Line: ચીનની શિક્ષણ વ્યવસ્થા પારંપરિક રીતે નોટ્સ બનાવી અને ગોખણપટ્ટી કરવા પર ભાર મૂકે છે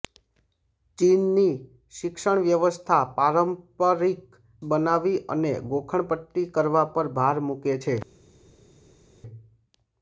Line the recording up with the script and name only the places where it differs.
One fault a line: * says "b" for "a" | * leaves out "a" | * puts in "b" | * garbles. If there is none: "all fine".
* leaves out "રીતે નોટ્સ"